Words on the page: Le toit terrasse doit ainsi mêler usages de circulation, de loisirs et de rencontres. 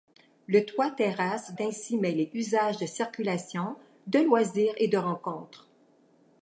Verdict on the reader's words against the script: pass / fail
fail